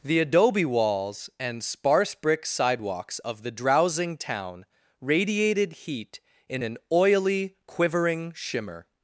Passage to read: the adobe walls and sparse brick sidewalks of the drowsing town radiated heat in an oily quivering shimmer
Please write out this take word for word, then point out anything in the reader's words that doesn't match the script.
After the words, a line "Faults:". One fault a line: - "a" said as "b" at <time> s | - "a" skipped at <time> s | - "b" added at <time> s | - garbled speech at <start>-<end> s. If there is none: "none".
the adobe walls and sparse brick sidewalks of the drowsing town radiated heat in an oily quivering shimmer
Faults:
none